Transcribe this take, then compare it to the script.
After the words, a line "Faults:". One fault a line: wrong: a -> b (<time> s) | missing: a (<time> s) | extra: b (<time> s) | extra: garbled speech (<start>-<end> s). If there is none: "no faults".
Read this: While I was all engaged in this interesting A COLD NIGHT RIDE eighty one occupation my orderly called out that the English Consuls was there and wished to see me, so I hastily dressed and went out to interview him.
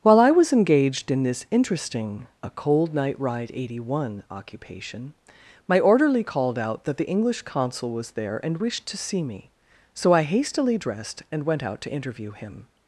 While I was engaged in this interesting A COLD NIGHT RIDE eighty one occupation my orderly called out that the English Consul was there and wished to see me, so I hastily dressed and went out to interview him.
Faults:
missing: all (0.5 s)
wrong: Consuls -> Consul (7.4 s)